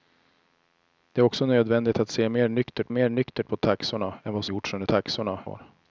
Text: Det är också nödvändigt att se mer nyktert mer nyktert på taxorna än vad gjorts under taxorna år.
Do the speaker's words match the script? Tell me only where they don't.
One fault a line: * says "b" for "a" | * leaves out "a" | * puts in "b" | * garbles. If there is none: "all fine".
all fine